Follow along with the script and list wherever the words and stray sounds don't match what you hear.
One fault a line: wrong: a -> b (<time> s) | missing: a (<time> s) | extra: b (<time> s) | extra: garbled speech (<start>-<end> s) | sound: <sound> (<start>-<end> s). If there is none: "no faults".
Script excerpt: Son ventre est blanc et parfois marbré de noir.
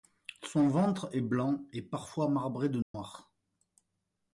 sound: dropout (2.8-2.9 s)